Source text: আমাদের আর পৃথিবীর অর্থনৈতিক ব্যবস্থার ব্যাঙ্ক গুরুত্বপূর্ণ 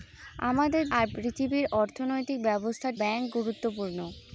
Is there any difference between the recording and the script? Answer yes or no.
no